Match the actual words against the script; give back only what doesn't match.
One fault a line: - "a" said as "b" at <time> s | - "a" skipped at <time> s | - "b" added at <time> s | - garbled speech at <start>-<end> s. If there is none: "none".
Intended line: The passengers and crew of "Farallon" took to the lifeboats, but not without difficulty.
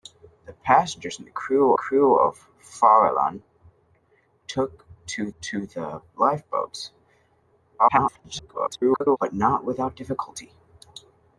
- "crew" added at 1.7 s
- "to" added at 5.4 s
- garbled speech at 7.8-9.2 s